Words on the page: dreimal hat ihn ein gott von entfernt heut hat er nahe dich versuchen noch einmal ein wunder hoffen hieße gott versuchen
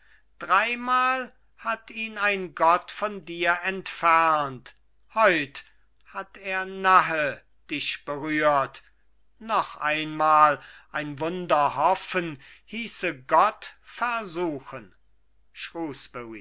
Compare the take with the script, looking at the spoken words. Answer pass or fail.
fail